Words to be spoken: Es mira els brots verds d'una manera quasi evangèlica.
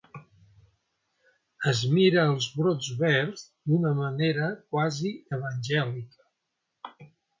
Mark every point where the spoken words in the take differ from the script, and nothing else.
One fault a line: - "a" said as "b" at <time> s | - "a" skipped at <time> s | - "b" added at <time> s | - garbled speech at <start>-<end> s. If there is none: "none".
none